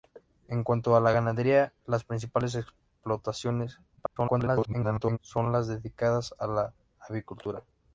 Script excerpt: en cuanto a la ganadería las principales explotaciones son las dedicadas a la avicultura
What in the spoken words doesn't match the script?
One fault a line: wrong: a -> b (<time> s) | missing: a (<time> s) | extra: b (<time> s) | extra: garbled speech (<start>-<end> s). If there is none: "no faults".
extra: garbled speech (4.0-5.2 s)